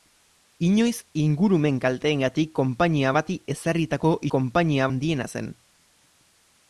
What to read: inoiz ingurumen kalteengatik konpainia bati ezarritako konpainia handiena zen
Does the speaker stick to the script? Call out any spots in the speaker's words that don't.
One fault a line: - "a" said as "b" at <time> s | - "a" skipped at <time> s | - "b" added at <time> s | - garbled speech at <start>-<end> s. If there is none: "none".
none